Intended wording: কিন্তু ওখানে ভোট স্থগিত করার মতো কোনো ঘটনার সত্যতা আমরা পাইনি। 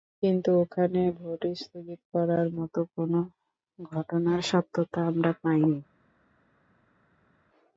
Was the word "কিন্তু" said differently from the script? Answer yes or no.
no